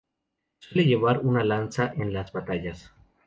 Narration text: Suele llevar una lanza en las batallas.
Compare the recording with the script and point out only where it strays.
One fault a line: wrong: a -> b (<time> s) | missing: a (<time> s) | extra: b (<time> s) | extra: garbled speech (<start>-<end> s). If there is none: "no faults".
no faults